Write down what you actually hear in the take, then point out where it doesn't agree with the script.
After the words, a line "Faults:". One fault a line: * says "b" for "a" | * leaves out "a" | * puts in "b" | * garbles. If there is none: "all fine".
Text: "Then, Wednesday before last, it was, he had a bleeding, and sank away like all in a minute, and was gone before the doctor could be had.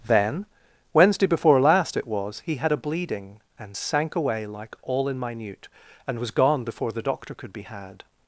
"Then, Wednesday before last, it was, he had a bleeding, and sank away like all in minute, and was gone before the doctor could be had.
Faults:
* leaves out "a"